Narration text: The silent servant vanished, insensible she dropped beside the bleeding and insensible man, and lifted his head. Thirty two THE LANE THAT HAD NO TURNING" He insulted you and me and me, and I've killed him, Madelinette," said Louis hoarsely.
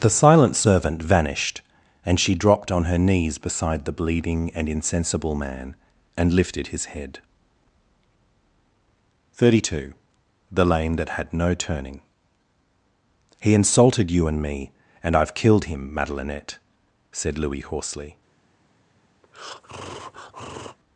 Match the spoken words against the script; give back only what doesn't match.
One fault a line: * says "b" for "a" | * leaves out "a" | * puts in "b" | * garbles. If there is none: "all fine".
* says "and" for "insensible"
* puts in "on her knees"
* leaves out "me and"